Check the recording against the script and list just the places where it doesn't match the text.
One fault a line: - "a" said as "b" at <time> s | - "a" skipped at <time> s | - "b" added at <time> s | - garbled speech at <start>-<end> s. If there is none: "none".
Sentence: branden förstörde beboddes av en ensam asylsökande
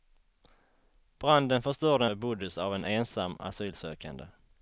none